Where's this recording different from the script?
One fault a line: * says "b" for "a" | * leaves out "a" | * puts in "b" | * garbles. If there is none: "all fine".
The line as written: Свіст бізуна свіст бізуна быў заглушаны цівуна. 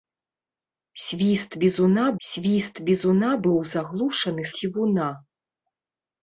all fine